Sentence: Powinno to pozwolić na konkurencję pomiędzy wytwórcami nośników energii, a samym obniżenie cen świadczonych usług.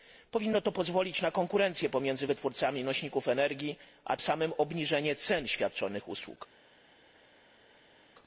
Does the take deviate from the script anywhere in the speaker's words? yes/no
no